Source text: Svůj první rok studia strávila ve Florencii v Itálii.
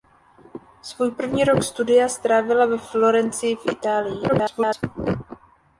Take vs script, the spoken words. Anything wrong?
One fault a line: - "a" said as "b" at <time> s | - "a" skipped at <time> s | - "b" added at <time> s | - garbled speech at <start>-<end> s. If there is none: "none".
- garbled speech at 4.3-4.8 s